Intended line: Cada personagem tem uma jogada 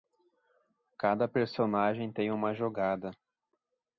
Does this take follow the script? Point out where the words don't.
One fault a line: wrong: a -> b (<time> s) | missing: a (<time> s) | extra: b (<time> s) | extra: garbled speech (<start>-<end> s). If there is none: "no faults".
no faults